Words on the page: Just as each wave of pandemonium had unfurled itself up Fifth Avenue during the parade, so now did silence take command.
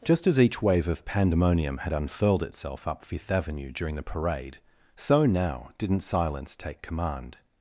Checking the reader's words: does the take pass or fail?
fail